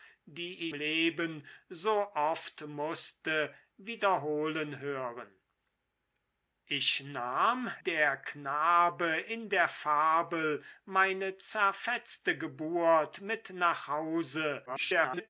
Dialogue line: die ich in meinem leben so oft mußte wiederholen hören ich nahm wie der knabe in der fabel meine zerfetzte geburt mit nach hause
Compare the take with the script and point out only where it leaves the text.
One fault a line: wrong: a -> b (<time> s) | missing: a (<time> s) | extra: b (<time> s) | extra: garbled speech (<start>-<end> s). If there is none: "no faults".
missing: ich in meinem (0.7 s)
missing: wie (7.7 s)
extra: garbled speech (14.7-15.3 s)